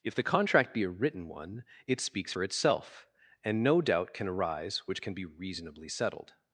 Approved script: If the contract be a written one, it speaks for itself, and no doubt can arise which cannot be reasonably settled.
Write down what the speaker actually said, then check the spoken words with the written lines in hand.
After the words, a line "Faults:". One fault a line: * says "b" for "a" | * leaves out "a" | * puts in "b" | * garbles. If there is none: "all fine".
If the contract be a written one, it speaks for itself, and no doubt can arise which can be reasonably settled.
Faults:
* says "can" for "cannot"